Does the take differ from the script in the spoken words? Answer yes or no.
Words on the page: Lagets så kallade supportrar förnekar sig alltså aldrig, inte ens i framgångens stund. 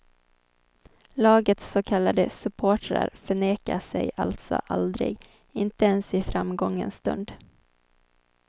no